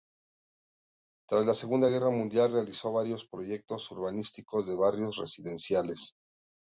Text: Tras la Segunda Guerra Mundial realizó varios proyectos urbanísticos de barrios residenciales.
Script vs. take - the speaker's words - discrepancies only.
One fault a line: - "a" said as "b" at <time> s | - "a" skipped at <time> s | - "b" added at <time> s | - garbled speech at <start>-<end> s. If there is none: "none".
none